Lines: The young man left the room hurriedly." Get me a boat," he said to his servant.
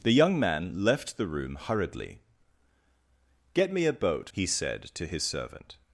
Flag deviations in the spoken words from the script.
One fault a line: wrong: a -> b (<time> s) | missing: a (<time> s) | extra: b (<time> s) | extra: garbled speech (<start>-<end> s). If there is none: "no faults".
no faults